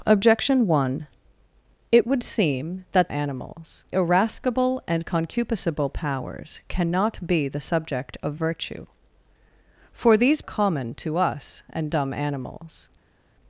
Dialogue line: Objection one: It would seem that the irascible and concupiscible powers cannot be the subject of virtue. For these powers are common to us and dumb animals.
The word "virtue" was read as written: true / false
true